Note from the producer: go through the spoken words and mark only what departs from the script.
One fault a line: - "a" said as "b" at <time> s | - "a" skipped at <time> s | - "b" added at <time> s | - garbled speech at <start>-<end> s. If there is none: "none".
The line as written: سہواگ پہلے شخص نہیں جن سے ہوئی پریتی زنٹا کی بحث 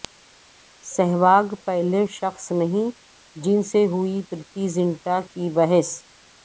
none